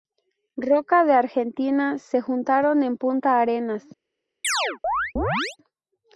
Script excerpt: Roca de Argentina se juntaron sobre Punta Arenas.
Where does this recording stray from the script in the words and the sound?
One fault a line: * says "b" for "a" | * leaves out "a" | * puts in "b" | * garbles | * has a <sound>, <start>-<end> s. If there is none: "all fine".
* says "en" for "sobre"
* has a chirp, 4.4-5.6 s